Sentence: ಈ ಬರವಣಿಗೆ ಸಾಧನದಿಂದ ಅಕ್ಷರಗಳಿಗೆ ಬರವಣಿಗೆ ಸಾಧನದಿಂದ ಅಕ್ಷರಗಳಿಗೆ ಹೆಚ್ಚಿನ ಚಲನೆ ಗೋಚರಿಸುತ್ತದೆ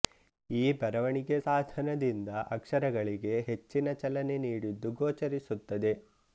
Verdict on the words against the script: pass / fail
fail